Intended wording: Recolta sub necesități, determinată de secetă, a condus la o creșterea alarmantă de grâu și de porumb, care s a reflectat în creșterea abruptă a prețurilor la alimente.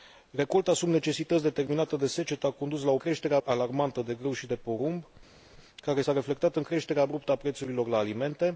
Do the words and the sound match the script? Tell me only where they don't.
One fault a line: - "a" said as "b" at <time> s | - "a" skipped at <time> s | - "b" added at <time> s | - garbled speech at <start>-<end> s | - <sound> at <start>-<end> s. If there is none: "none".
none